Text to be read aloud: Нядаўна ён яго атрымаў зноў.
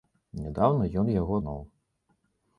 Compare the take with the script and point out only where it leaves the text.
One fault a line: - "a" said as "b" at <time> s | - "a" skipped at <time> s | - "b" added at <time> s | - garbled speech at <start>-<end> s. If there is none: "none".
- "атрымаў" skipped at 1.4 s